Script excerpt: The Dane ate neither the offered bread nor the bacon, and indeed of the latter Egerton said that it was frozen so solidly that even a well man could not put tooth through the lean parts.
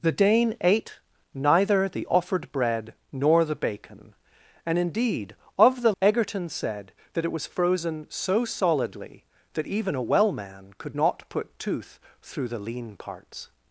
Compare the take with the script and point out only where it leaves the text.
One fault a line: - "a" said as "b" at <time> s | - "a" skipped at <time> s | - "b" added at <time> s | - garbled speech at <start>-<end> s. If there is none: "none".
- "latter" skipped at 5.9 s